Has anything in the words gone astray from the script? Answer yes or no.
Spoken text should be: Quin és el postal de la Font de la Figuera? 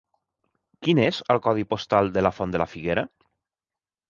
yes